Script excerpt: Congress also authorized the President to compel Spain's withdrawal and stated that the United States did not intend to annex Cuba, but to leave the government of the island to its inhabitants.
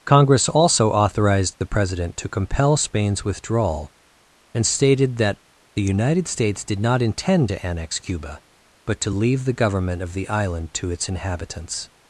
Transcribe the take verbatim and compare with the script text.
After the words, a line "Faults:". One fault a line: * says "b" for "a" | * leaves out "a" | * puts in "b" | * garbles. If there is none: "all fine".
Congress also authorized the President to compel Spain's withdrawal and stated that the United States did not intend to annex Cuba, but to leave the government of the island to its inhabitants.
Faults:
all fine